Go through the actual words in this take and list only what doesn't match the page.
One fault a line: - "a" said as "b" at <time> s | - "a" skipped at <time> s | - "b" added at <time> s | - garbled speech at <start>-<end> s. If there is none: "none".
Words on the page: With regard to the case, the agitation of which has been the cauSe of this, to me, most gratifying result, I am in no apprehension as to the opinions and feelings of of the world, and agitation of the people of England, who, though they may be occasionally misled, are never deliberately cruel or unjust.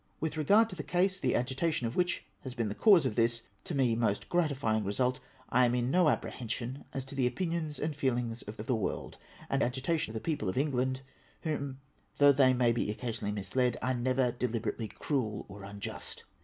none